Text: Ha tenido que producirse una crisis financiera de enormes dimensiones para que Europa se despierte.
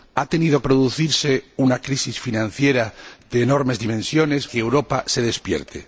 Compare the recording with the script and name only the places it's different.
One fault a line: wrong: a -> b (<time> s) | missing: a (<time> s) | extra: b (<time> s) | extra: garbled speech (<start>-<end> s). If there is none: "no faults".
missing: que (0.6 s)
missing: para (4.5 s)